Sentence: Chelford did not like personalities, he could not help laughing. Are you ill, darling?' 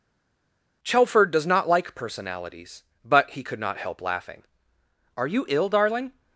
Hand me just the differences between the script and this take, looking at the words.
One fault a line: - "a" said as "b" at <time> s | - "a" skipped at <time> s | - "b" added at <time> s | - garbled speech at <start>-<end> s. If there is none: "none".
- "did" said as "does" at 1.3 s
- "but" added at 3.0 s